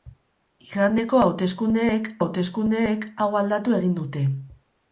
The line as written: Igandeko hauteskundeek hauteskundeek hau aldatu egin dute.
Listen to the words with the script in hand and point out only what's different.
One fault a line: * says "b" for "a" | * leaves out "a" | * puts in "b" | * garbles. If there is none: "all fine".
all fine